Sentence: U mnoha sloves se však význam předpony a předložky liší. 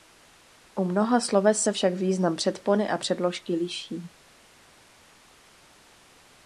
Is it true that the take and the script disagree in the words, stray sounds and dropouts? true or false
false